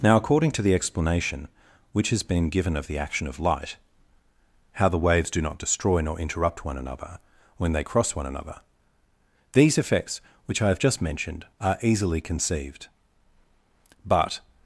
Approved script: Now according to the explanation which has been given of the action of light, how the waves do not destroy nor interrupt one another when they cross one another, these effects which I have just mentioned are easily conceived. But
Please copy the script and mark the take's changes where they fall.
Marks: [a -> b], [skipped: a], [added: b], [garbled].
Now according to the explanation which has been given of the action of light, how the waves do not destroy nor interrupt one another when they cross one another, these effects which I have just mentioned are easily conceived. But